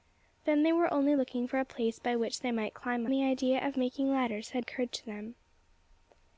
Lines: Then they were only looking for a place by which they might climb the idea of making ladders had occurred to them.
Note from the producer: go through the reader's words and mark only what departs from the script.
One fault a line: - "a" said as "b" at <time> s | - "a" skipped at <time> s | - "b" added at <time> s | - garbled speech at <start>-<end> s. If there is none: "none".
none